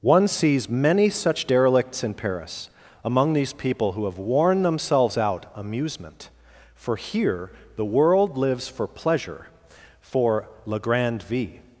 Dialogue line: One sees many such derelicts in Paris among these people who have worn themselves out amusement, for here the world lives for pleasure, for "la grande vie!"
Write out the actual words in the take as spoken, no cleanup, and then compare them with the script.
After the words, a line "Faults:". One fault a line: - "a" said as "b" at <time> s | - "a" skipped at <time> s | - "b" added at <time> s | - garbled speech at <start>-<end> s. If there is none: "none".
One sees many such derelicts in Paris among these people who have worn themselves out amusement, for here the world lives for pleasure, for "la grande vie!"
Faults:
none